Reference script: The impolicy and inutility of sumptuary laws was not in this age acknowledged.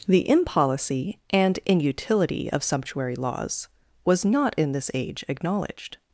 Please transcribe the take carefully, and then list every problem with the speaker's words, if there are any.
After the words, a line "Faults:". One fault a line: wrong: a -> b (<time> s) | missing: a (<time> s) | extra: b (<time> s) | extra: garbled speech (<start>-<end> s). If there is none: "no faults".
The impolicy and inutility of sumptuary laws was not in this age acknowledged.
Faults:
no faults